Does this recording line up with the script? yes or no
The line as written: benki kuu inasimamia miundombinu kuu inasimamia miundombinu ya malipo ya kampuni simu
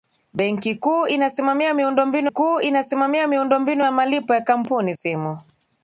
yes